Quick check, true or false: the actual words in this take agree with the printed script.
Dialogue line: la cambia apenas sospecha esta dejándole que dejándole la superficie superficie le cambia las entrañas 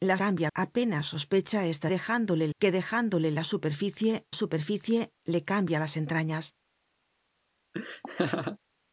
true